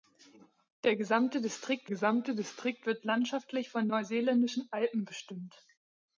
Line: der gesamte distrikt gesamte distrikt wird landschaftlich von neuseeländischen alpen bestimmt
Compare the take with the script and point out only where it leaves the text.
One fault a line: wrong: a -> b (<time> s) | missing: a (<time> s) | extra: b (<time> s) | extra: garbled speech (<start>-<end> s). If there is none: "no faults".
no faults